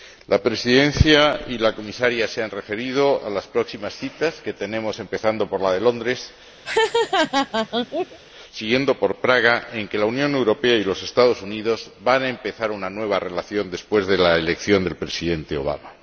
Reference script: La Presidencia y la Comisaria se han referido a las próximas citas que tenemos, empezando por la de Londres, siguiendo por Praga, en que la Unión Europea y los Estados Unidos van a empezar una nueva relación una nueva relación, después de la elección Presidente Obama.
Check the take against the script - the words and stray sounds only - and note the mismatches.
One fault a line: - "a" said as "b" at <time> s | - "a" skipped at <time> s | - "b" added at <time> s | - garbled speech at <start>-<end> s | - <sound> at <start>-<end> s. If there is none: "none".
- laugh at 6.6-8.2 s
- "una nueva relación" skipped at 13.7 s
- "del" added at 14.8 s